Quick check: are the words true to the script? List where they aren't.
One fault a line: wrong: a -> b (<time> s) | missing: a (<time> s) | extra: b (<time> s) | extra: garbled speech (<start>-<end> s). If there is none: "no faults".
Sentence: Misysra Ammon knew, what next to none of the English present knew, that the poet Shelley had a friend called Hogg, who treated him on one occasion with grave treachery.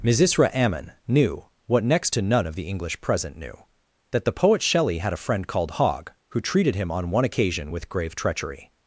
no faults